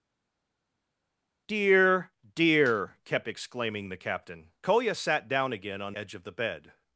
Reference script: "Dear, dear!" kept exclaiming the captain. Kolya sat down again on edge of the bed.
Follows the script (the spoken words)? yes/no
yes